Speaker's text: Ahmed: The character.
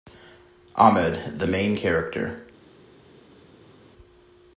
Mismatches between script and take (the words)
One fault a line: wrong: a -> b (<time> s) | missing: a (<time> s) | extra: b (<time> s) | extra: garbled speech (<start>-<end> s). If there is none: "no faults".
extra: main (1.4 s)